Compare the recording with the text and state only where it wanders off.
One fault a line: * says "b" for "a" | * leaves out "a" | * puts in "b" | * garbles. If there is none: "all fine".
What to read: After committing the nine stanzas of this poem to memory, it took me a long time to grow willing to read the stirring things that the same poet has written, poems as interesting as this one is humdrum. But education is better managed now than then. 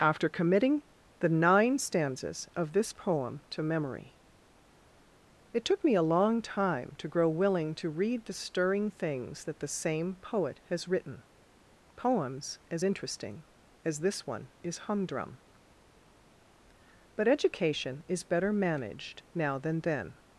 all fine